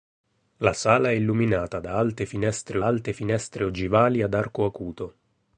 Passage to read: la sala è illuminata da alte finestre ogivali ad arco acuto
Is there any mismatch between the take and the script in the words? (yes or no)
yes